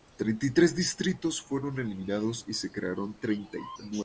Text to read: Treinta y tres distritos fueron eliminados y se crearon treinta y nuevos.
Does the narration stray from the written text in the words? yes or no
no